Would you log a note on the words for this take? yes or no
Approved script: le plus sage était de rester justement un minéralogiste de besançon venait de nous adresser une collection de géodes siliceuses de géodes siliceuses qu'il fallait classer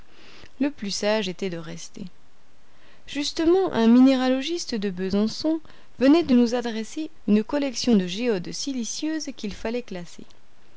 yes